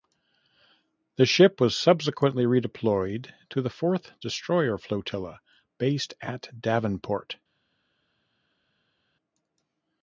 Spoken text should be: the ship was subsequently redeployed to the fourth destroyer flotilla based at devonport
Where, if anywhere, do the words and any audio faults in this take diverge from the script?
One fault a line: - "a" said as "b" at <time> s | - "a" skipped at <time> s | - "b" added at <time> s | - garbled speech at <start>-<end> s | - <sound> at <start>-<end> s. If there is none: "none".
none